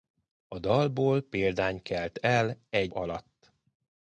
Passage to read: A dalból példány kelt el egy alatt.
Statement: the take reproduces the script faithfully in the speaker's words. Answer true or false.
true